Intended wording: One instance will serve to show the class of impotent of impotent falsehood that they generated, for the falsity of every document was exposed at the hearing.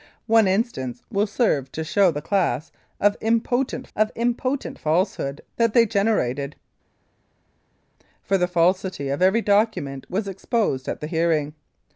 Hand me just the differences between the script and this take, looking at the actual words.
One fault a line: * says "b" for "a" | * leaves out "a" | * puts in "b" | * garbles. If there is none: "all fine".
all fine